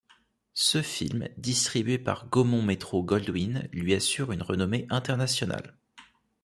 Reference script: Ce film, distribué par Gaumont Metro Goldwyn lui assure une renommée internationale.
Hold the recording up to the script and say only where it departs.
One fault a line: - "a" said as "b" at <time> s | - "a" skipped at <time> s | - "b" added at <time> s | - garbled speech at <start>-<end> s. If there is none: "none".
none